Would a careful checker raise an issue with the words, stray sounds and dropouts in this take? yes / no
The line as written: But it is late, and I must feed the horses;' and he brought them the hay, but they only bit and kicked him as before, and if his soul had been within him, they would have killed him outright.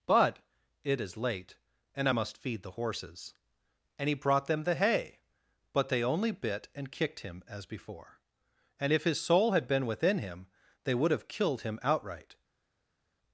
no